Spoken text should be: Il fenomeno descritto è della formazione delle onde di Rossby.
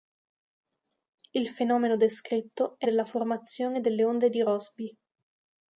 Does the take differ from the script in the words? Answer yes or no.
no